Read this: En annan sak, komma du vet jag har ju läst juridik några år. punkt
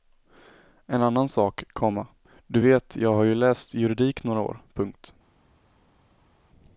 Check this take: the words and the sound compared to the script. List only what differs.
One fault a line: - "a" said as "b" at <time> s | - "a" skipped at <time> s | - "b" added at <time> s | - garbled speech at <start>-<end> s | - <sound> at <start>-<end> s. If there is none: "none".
none